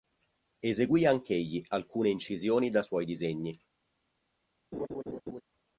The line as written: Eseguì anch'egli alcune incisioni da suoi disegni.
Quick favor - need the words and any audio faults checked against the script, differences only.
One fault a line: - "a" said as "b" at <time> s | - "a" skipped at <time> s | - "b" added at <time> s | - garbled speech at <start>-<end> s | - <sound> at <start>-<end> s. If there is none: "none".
- laugh at 4.7-5.4 s